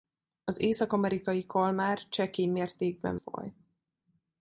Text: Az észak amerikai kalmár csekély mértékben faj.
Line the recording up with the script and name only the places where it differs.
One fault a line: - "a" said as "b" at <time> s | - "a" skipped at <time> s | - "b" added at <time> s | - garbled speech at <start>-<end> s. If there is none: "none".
none